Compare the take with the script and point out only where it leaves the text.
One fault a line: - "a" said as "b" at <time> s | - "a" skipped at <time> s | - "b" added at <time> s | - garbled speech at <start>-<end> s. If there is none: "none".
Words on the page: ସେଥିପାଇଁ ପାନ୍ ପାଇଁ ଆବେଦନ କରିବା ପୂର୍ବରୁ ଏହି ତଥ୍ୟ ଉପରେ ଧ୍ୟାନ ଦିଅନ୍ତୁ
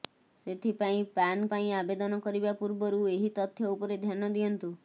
none